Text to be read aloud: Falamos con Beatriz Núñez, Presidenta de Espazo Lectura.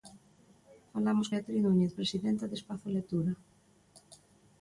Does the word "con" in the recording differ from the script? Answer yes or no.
yes